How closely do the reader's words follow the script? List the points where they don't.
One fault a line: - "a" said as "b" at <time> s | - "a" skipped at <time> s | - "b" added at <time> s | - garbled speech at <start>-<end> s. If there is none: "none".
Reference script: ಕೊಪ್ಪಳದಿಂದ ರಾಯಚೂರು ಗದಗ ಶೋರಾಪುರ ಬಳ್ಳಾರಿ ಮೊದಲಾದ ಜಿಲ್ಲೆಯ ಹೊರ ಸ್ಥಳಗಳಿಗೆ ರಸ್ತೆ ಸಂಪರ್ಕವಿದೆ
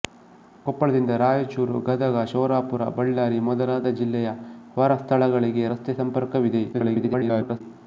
- garbled speech at 6.7-7.6 s